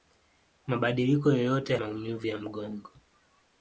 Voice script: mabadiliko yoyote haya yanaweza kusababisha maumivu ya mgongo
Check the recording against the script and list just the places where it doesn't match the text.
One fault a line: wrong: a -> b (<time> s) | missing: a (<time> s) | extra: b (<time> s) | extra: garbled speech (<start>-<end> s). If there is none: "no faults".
missing: haya yanaweza kusababisha (1.8 s)